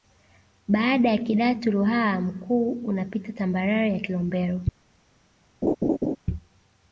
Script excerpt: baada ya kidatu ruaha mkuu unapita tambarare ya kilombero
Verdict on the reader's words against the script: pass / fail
pass